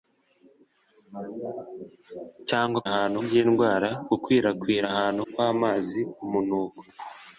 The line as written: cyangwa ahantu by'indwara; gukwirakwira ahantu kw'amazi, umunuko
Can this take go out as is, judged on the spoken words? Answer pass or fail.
pass